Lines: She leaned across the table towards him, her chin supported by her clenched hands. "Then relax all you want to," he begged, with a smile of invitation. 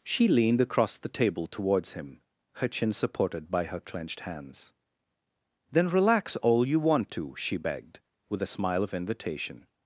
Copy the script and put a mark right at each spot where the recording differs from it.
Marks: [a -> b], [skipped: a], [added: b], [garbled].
She leaned across the table towards him, her chin supported by her clenched hands. "Then relax all you want to," [he -> she] begged, with a smile of invitation.